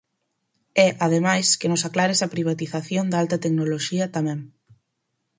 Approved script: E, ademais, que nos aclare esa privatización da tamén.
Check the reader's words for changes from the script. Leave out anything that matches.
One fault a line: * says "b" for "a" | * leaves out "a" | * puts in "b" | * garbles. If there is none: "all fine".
* puts in "alta tecnoloxía"